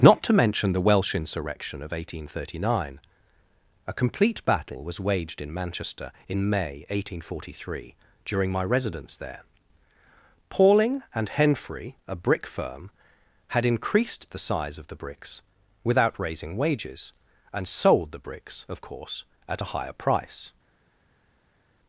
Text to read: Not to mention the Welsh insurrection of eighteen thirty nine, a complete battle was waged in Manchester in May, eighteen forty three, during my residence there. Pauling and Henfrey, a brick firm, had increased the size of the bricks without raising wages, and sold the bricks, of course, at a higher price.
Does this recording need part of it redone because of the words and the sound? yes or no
no